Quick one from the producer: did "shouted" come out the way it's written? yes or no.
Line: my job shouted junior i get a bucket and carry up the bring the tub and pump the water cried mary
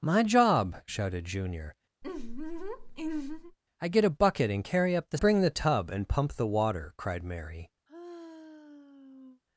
yes